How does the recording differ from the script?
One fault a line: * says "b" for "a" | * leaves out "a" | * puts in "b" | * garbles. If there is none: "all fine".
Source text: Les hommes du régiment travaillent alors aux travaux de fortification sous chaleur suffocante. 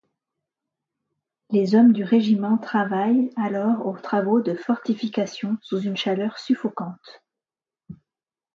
* puts in "une"